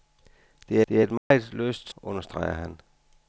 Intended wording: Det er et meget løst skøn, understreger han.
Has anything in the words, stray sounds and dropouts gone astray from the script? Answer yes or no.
yes